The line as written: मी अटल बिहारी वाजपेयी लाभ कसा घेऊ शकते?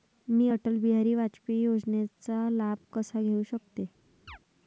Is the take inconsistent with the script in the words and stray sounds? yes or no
yes